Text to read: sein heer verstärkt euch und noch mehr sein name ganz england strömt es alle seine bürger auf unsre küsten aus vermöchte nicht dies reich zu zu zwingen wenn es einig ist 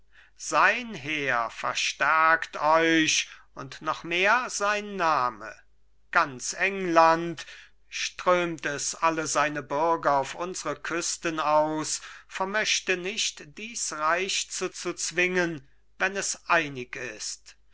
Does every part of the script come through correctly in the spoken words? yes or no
yes